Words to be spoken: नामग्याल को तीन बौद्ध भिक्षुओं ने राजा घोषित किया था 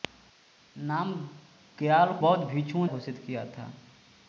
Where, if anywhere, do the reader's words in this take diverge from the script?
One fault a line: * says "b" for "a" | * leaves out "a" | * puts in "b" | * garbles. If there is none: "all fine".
* leaves out "को तीन"
* leaves out "ने राजा"